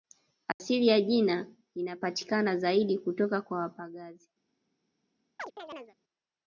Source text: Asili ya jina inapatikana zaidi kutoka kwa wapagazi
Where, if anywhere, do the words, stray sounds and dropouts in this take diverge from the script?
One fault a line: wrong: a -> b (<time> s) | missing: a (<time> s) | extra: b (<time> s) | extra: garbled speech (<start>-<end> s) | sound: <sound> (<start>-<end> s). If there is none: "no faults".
sound: dropout (0.5-0.6 s)
sound: chirp (5.4-6.0 s)